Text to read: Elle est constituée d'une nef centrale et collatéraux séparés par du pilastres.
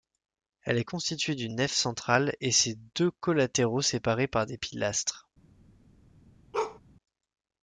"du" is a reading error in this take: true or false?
true